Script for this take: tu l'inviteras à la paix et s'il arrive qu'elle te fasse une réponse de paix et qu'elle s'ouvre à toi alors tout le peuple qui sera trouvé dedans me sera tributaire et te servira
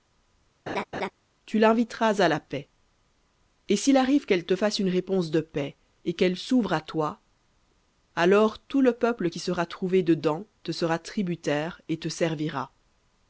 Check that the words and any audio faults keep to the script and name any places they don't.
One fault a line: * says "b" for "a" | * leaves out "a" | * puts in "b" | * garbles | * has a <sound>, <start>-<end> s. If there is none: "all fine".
* has a laugh, 0.7-1.1 s
* says "te" for "me"